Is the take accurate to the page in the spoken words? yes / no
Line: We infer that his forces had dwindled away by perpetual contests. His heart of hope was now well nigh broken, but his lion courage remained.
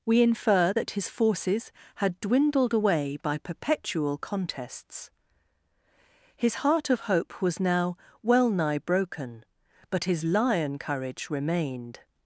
yes